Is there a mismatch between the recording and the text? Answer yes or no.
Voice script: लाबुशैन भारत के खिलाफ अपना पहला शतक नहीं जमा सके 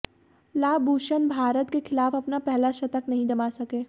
no